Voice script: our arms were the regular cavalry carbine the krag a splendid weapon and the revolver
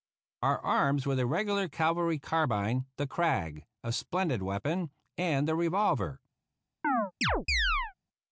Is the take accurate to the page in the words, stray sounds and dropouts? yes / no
no